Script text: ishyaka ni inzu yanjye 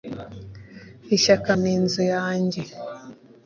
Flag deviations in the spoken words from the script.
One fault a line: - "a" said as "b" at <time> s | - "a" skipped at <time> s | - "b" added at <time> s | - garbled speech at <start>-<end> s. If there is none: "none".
none